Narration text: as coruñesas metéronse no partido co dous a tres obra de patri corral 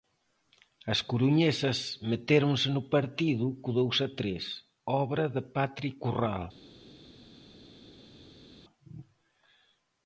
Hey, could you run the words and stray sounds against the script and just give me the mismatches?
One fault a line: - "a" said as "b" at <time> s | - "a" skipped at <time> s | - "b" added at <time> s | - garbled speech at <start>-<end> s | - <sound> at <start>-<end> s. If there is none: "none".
none